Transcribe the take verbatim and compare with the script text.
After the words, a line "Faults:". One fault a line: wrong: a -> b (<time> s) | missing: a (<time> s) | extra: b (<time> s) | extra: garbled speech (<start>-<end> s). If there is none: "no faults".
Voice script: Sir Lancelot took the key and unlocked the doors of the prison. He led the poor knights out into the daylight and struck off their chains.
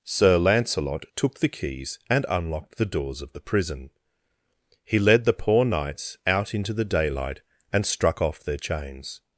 Sir Lancelot took the keys and unlocked the doors of the prison. He led the poor knights out into the daylight and struck off their chains.
Faults:
wrong: key -> keys (1.5 s)